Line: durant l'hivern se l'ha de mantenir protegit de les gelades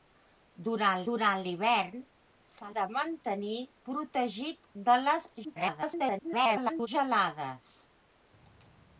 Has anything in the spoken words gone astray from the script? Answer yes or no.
yes